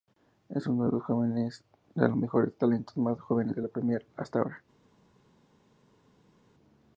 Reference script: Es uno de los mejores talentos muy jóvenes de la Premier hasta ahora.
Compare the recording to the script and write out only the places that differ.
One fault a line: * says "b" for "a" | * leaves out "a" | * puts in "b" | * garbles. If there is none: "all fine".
* says "más" for "muy"